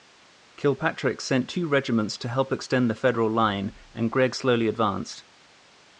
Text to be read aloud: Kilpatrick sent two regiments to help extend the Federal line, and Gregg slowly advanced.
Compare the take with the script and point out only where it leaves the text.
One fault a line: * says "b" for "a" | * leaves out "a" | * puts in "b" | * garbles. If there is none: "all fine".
all fine